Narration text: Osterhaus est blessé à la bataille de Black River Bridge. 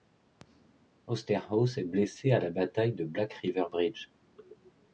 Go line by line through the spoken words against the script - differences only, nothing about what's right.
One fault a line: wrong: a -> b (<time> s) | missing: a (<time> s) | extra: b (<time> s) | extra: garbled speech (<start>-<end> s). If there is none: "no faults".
no faults